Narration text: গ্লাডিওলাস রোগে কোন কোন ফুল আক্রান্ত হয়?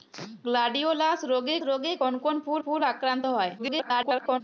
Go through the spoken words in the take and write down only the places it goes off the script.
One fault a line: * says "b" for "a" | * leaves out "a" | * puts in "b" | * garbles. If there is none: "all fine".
* puts in "রোগে"
* puts in "ফুল"
* garbles